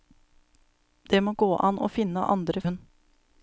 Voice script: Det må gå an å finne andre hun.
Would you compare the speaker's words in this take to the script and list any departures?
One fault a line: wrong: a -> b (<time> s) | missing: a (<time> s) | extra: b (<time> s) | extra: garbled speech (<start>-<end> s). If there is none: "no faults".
no faults